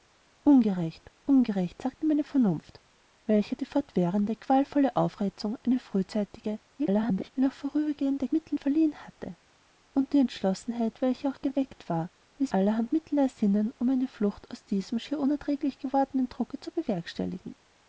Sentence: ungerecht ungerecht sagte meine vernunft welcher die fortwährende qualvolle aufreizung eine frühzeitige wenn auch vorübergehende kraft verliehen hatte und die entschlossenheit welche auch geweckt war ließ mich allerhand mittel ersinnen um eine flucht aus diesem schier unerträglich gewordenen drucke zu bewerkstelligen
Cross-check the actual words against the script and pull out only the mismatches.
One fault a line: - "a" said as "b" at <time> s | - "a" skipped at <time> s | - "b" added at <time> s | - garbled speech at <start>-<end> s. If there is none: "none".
- garbled speech at 6.8-7.3 s
- "kraft" said as "mittel" at 8.3 s
- "mich" skipped at 12.5 s